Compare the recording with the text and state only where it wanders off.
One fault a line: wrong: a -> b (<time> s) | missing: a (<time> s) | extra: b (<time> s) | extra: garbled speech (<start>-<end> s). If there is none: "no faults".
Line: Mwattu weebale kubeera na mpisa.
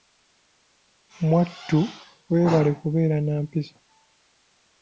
no faults